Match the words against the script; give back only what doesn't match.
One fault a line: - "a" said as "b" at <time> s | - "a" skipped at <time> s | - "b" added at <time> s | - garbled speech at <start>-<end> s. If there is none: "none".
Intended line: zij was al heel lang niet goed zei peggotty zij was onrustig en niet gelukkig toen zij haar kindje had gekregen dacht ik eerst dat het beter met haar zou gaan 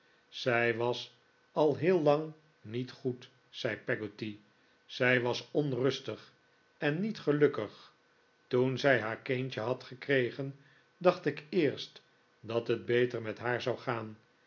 none